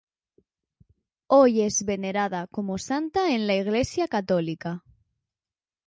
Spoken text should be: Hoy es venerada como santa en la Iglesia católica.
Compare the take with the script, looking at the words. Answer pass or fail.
pass